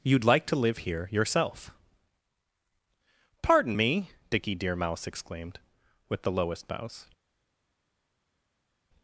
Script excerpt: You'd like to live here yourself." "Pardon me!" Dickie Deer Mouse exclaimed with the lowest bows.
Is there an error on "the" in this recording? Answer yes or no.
no